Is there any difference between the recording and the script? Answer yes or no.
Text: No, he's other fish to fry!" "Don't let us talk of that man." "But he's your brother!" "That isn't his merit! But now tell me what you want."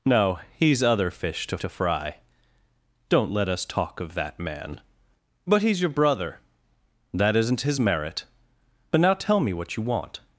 yes